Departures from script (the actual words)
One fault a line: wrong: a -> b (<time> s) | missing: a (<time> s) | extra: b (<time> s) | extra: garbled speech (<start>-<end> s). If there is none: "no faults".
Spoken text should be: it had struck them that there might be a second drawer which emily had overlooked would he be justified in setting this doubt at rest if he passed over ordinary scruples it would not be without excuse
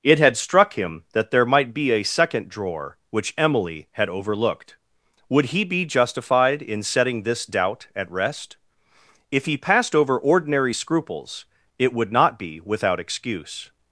wrong: them -> him (0.7 s)